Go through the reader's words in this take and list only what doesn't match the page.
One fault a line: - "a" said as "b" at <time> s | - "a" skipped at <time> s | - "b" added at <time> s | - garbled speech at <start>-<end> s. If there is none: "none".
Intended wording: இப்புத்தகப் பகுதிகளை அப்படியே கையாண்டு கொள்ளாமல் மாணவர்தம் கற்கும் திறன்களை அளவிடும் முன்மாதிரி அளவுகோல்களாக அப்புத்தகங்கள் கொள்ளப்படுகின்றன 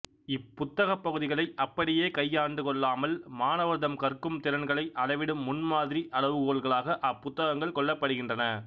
none